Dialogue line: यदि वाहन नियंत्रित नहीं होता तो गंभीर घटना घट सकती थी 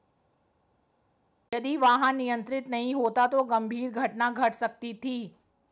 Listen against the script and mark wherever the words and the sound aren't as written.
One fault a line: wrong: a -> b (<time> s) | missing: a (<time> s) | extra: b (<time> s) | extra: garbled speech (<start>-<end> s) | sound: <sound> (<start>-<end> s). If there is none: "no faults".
no faults